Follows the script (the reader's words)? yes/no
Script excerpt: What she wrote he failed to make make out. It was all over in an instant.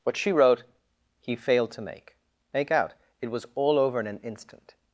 yes